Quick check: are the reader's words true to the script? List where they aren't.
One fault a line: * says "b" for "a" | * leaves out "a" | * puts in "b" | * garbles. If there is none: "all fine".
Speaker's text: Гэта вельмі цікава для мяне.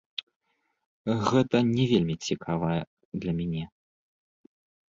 * puts in "не"